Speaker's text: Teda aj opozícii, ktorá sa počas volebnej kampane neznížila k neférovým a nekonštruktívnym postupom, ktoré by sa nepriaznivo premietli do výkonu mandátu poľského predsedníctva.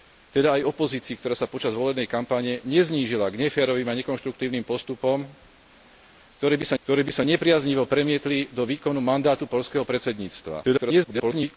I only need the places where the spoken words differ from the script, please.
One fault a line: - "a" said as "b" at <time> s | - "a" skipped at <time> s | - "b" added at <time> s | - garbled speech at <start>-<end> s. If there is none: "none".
- "ktoré by sa" added at 6.8 s
- garbled speech at 10.6-11.6 s